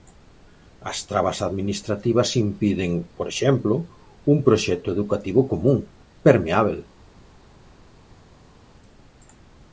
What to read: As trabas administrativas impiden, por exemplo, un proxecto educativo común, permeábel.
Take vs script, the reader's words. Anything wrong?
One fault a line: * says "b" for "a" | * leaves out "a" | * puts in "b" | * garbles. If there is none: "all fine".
all fine